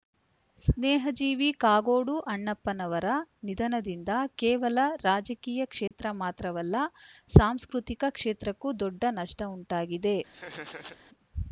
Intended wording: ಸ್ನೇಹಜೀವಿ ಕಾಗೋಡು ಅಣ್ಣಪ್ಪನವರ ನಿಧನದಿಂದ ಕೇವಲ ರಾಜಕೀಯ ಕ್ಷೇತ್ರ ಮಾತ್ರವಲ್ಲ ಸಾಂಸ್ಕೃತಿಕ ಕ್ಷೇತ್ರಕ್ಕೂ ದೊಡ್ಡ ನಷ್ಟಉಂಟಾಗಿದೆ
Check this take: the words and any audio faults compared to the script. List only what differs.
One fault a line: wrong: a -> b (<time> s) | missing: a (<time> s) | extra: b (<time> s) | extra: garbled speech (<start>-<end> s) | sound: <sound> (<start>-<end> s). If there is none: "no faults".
sound: dropout (5.9-5.9 s)
sound: laugh (10.3-11.0 s)